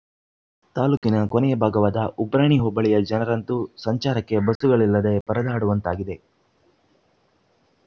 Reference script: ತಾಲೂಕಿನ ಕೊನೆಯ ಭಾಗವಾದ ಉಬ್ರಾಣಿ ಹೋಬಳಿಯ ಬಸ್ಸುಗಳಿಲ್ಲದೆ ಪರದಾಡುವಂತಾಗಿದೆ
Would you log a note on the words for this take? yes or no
yes